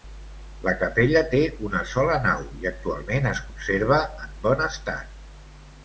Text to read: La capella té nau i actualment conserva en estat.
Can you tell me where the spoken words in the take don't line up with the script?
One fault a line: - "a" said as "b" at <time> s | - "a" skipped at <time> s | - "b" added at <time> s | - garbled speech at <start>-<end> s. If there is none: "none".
- "una sola" added at 1.7 s
- "es" added at 3.4 s
- "bon" added at 4.5 s